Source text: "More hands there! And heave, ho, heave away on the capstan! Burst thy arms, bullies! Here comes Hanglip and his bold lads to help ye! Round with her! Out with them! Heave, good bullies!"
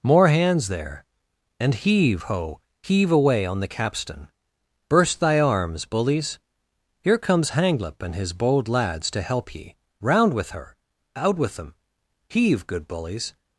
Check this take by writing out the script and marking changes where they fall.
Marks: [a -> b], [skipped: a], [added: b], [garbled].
"More hands there! And heave, ho, heave away on the capstan! Burst thy arms, bullies! Here comes Hanglip and his bold lads to help ye! Round with her! Out with them! Heave, good bullies!"